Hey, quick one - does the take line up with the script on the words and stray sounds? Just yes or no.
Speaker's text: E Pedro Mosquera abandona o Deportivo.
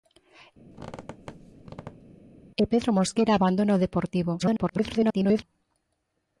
no